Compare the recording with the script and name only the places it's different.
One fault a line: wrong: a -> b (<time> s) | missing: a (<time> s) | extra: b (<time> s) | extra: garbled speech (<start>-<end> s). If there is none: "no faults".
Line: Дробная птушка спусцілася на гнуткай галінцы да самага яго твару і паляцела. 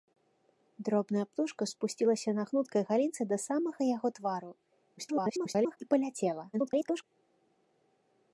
extra: garbled speech (5.0-5.8 s)
extra: garbled speech (6.5-7.0 s)